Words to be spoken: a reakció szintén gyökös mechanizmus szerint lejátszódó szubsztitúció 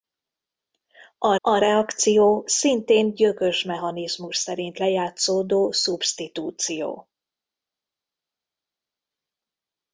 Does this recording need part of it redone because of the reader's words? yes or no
yes